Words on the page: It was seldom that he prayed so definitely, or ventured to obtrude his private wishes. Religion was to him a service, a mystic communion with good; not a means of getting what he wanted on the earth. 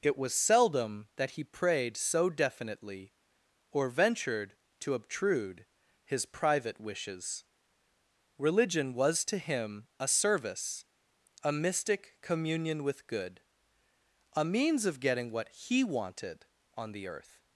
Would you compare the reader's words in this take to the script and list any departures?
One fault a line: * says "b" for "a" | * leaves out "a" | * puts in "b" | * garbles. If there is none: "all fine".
* leaves out "not"